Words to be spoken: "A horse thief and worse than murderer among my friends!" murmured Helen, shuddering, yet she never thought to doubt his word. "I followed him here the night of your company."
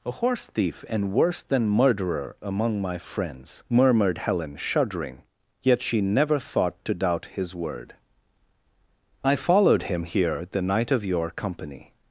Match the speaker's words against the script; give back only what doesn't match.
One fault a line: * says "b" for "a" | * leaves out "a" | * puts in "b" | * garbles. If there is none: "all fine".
all fine